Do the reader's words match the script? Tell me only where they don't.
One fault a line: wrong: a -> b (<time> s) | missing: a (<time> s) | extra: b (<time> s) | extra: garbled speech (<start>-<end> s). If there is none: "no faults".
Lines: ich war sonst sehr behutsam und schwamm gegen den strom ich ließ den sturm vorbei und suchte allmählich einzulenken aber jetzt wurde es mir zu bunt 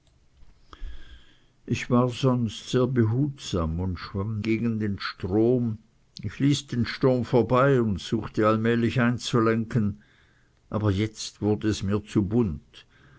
no faults